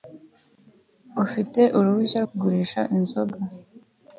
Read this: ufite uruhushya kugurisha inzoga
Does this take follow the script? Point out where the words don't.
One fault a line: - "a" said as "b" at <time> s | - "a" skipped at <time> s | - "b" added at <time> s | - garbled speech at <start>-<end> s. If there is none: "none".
none